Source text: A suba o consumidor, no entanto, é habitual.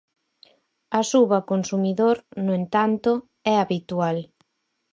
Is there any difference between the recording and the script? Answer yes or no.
no